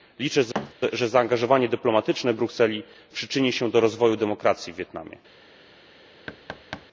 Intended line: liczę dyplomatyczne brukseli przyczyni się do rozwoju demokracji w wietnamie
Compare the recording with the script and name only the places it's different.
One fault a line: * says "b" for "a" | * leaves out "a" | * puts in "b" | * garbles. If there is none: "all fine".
* puts in "że zaangażowanie"